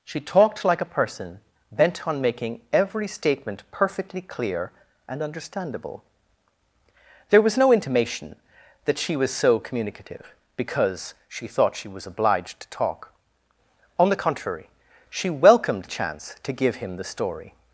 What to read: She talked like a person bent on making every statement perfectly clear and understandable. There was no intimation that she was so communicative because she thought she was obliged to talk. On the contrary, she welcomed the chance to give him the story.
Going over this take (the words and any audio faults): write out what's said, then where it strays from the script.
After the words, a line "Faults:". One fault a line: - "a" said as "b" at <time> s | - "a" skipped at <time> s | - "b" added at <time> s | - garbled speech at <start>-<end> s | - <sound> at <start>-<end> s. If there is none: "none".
She talked like a person bent on making every statement perfectly clear and understandable. There was no intimation that she was so communicative because she thought she was obliged to talk. On the contrary, she welcomed chance to give him the story.
Faults:
- "the" skipped at 15.8 s